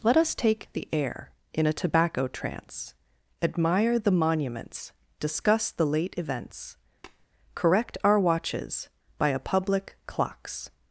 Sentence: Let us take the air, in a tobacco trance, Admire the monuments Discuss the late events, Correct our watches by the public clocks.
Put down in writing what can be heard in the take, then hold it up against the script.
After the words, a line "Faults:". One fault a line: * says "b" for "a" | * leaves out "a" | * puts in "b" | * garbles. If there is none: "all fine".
Let us take the air, in a tobacco trance, Admire the monuments Discuss the late events, Correct our watches by a public clocks.
Faults:
* says "a" for "the"